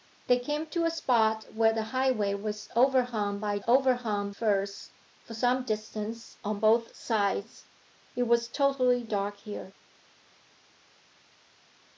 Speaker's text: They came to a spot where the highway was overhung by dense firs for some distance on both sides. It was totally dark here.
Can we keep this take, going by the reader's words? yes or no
no